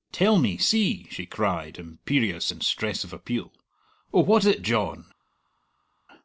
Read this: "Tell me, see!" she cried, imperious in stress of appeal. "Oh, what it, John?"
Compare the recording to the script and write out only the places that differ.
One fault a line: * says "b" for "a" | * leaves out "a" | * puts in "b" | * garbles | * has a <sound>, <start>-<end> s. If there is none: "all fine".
all fine